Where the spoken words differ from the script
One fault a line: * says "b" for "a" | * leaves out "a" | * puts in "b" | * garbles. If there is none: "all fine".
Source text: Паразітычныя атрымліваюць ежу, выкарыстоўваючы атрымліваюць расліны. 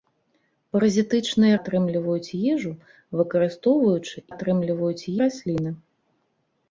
all fine